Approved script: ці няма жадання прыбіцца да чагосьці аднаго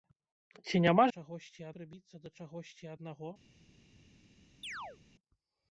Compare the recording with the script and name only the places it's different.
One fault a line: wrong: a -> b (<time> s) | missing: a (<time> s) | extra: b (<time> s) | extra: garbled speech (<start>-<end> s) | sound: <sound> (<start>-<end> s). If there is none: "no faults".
wrong: жадання -> чагосьці (1.2 s)
sound: chirp (4.6-5.0 s)